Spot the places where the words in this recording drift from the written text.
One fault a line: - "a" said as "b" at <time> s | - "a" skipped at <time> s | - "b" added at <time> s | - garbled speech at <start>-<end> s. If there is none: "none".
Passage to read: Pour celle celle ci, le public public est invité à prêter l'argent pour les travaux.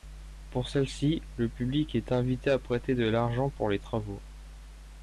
- "celle" skipped at 0.9 s
- "public" skipped at 1.9 s
- "de" added at 3.0 s